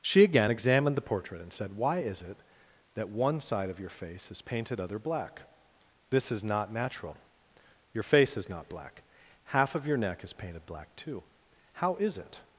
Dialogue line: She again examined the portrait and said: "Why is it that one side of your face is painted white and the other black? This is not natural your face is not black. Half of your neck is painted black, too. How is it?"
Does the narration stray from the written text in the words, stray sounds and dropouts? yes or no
yes